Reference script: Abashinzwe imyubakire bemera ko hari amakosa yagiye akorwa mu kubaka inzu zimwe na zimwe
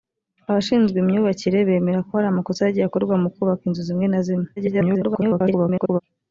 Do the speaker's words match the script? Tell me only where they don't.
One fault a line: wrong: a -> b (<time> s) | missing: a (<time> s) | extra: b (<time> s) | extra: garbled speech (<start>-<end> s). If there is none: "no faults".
extra: garbled speech (4.6-6.0 s)